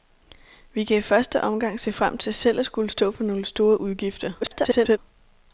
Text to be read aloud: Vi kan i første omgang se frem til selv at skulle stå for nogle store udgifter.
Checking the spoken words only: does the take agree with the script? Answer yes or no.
no